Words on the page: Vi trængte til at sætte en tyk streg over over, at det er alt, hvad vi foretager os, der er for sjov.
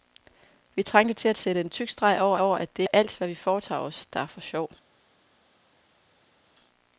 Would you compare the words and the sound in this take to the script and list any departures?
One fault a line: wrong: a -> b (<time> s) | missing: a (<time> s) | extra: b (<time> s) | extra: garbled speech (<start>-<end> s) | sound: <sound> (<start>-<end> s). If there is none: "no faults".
no faults